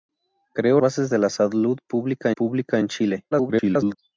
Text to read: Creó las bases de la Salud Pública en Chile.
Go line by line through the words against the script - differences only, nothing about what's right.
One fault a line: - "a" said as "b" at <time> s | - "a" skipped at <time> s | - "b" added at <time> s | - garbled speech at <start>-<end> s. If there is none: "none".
- "las" skipped at 0.8 s
- "Pública" added at 2.3 s
- garbled speech at 3.3-4.0 s